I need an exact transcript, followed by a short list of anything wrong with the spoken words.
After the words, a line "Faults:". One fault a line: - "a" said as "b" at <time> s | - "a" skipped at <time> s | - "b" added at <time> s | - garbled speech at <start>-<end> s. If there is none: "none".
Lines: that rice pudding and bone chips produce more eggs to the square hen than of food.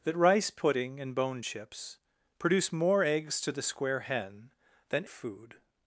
that rice pudding and bone chips produce more eggs to the square hen than of food.
Faults:
none